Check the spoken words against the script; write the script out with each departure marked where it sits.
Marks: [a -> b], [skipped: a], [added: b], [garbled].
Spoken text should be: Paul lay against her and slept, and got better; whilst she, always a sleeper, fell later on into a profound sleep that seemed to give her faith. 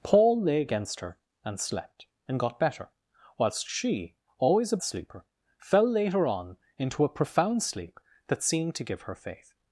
Paul lay against her and slept, and got better; whilst she, always a sleeper, fell later on into a profound sleep that seemed to give her faith.